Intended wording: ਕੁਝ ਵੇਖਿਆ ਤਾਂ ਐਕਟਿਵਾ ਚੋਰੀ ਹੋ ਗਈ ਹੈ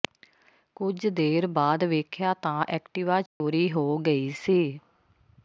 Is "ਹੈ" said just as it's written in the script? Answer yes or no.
no